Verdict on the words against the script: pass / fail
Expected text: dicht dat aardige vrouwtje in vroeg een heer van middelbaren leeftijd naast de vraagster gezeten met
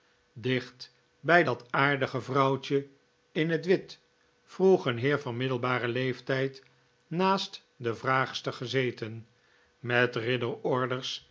fail